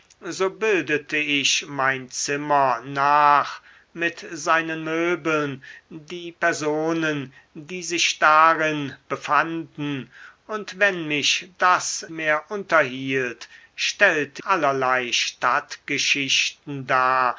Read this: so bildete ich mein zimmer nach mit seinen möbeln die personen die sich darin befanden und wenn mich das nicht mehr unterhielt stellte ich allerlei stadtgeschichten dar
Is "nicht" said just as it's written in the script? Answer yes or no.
no